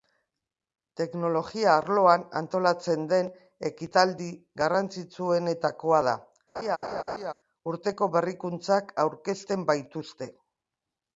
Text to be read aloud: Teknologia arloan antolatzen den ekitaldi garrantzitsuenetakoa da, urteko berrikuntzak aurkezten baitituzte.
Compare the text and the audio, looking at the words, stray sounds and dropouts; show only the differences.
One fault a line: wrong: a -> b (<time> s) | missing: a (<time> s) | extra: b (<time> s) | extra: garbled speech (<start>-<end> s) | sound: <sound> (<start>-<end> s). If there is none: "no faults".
sound: laugh (6.6-7.3 s)